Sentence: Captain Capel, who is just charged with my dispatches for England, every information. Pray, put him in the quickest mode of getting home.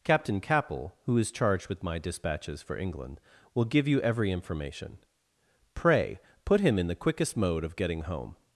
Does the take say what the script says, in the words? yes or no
no